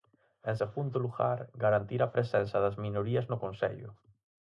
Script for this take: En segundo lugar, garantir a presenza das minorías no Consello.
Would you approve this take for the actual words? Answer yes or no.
yes